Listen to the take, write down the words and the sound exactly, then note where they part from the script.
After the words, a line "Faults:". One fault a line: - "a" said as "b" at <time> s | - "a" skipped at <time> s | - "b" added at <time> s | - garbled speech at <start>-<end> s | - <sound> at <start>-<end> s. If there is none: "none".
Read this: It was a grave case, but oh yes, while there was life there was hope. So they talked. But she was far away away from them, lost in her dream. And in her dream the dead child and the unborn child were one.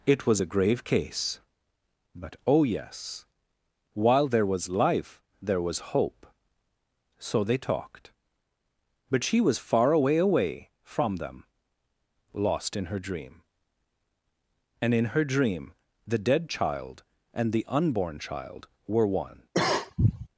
It was a grave case, but oh yes, while there was life there was hope. So they talked. But she was far away away from them, lost in her dream. And in her dream the dead child and the unborn child were one.
Faults:
- cough at 19.5-20.3 s